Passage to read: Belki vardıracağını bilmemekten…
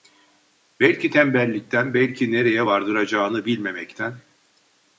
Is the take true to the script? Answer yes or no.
no